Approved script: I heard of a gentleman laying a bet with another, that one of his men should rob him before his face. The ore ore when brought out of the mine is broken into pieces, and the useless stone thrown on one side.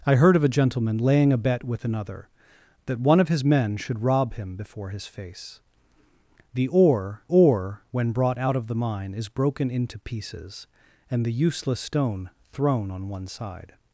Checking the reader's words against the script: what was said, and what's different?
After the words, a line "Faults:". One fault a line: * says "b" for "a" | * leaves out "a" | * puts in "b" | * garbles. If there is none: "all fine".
I heard of a gentleman laying a bet with another, that one of his men should rob him before his face. The ore ore when brought out of the mine is broken into pieces, and the useless stone thrown on one side.
Faults:
all fine